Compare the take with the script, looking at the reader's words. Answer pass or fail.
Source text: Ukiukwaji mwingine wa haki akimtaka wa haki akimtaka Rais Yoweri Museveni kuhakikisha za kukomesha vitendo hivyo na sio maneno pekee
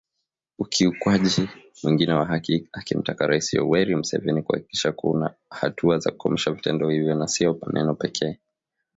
fail